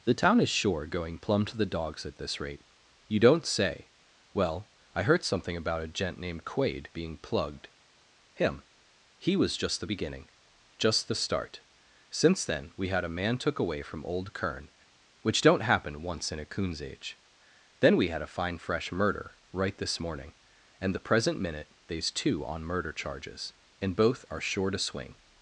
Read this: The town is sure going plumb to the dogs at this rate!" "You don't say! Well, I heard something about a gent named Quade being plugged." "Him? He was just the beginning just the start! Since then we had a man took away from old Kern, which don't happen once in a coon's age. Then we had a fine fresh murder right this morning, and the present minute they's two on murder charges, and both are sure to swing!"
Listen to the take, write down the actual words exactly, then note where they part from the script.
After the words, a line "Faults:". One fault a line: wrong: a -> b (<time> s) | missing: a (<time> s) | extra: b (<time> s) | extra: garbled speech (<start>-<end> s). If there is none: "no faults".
The town is sure going plumb to the dogs at this rate!" "You don't say! Well, I heard something about a gent named Quade being plugged." "Him? He was just the beginning just the start! Since then we had a man took away from old Kern, which don't happen once in a coon's age. Then we had a fine fresh murder right this morning, and the present minute they's two on murder charges, and both are sure to swing!"
Faults:
no faults